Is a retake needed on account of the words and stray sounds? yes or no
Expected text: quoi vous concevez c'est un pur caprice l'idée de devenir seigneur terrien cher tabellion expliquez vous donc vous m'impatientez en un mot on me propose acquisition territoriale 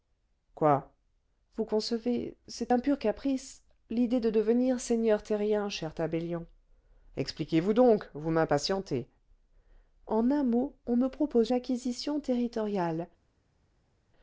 no